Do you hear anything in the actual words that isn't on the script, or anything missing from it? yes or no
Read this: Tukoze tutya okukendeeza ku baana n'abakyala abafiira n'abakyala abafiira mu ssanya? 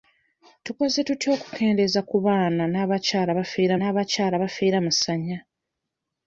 no